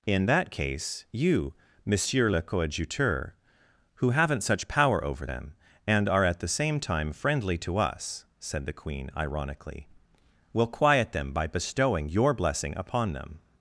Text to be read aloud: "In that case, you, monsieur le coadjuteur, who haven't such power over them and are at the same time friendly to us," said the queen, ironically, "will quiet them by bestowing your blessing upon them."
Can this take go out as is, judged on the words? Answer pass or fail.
pass